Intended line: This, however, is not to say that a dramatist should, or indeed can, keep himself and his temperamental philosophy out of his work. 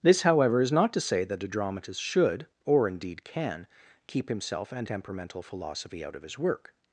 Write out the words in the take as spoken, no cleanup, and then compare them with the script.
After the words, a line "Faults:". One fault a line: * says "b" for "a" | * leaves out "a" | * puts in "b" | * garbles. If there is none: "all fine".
This, however, is not to say that a dramatist should, or indeed can, keep himself and temperamental philosophy out of his work.
Faults:
* leaves out "his"